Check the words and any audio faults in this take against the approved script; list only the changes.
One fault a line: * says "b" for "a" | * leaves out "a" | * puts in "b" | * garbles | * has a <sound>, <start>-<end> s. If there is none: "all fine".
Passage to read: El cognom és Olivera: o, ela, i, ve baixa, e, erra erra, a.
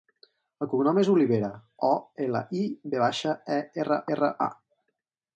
all fine